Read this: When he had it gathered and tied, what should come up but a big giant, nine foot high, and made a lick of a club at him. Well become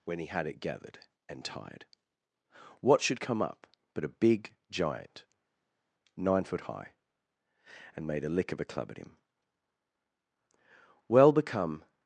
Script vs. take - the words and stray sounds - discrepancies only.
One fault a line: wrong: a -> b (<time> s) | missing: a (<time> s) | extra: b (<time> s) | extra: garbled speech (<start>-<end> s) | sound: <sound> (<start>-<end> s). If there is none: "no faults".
no faults